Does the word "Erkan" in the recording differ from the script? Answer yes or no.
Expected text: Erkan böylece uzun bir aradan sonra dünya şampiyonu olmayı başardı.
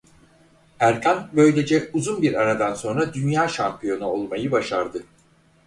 no